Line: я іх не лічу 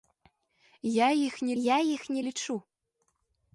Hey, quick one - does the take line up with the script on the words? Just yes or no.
no